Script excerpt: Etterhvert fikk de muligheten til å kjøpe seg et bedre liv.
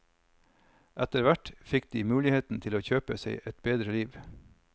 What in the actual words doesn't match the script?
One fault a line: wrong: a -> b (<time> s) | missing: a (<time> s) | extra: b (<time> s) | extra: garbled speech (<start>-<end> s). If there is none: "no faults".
no faults